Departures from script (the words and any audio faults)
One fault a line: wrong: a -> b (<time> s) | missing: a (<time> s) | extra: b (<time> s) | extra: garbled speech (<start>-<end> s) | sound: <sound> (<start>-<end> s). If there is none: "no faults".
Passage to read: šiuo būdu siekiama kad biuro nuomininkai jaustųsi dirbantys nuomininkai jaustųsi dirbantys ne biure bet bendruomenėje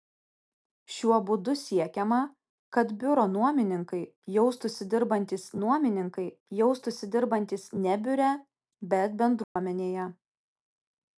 sound: dropout (9.4-9.6 s)